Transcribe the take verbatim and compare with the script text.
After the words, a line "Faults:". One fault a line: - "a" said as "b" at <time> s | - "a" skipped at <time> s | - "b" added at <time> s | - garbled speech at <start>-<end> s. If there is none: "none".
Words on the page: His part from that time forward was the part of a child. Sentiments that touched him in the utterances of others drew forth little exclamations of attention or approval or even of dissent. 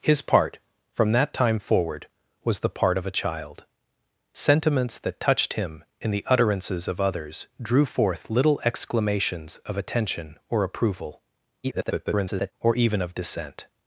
His part from that time forward was the part of a child. Sentiments that touched him in the utterances of others drew forth little exclamations of attention or approval [garbled] or even of dissent.
Faults:
- garbled speech at 11.6-12.5 s